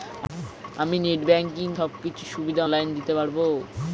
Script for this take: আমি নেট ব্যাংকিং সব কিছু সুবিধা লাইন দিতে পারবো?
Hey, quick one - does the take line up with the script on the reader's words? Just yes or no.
yes